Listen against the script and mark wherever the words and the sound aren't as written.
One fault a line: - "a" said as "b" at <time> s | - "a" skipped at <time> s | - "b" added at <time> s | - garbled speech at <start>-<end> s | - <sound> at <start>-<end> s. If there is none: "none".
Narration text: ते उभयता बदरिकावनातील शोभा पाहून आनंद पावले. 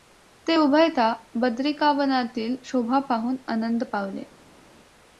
none